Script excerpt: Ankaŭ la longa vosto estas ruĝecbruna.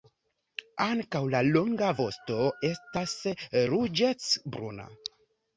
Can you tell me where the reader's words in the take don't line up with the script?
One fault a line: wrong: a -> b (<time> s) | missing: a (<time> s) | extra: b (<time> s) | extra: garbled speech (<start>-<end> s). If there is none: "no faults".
no faults